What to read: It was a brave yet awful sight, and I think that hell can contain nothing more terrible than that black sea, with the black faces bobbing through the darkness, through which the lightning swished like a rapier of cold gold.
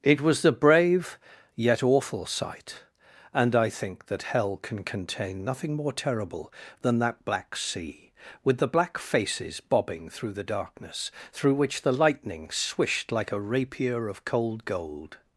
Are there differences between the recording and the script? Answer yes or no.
yes